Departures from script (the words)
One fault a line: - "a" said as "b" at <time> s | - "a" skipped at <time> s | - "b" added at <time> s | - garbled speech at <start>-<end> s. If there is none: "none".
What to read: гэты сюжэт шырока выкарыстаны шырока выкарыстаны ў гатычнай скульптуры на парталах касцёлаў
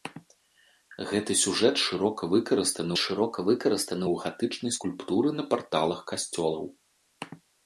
none